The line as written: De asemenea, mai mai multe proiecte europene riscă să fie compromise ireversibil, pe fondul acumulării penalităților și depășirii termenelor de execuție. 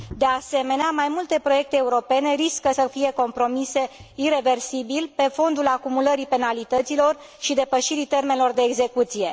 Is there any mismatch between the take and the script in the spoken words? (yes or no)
yes